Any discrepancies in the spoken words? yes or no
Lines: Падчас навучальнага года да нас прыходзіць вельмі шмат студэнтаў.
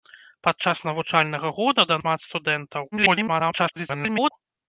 yes